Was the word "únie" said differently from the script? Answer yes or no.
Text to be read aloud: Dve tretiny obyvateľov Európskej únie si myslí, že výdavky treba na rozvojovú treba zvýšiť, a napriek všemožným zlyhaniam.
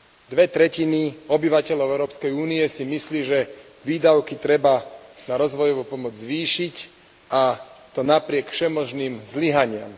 no